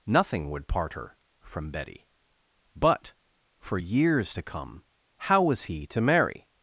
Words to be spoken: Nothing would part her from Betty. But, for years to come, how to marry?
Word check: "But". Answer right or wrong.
right